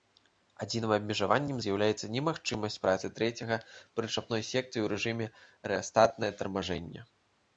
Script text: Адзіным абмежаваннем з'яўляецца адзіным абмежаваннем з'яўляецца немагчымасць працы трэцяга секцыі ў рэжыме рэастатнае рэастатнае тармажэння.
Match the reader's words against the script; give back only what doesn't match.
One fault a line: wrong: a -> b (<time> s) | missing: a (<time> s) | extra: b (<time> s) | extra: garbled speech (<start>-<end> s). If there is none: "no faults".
missing: адзіным абмежаваннем з'яўляецца (2.1 s)
extra: прычапной (4.0 s)
missing: рэастатнае (6.3 s)